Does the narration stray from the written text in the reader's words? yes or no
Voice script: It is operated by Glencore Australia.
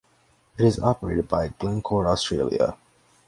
no